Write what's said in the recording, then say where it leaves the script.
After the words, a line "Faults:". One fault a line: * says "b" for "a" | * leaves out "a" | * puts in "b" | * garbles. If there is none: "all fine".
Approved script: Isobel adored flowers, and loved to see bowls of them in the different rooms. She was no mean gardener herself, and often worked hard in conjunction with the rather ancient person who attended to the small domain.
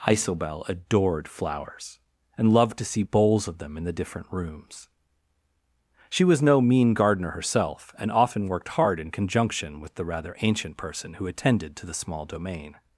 Isobel adored flowers, and loved to see bowls of them in the different rooms. She was no mean gardener herself, and often worked hard in conjunction with the rather ancient person who attended to the small domain.
Faults:
all fine